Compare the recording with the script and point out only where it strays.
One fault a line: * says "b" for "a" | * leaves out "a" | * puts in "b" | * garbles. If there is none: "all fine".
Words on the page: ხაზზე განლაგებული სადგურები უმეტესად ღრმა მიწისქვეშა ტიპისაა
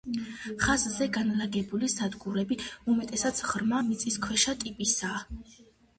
all fine